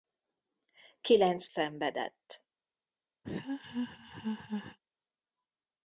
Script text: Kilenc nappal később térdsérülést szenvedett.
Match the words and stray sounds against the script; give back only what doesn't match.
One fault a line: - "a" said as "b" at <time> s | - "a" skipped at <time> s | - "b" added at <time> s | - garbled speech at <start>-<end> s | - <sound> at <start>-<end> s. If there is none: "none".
- "nappal később térdsérülést" skipped at 1.5 s
- laugh at 3.2-4.8 s